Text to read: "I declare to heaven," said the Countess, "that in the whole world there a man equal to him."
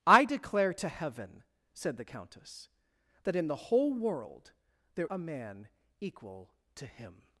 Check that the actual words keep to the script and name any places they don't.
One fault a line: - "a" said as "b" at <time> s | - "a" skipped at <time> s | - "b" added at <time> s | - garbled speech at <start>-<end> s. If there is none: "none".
none